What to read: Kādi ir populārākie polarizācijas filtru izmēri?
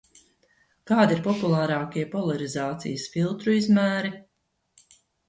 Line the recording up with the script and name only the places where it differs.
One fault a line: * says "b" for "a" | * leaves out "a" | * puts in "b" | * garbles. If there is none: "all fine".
all fine